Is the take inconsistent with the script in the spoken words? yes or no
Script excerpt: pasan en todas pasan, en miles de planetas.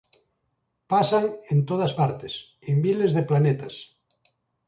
yes